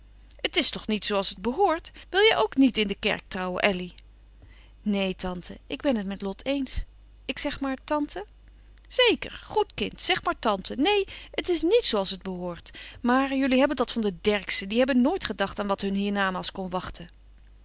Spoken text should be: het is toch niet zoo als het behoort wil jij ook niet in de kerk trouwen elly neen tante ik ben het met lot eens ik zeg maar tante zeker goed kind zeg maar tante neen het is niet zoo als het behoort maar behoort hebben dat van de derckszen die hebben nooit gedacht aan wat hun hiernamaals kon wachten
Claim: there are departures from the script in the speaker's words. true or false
true